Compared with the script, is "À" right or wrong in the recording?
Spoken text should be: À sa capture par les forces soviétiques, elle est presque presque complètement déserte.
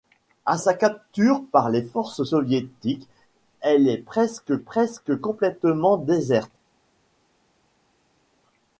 right